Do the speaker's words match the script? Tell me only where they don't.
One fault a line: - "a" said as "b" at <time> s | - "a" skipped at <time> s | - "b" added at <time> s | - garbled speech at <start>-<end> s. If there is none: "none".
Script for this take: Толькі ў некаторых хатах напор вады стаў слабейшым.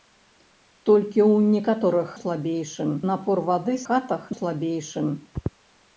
- "хатах" said as "слабейшым" at 2.2 s
- "стаў" said as "хатах" at 3.9 s